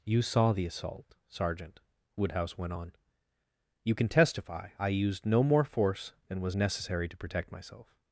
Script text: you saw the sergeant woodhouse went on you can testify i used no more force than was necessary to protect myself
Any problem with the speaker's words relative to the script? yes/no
yes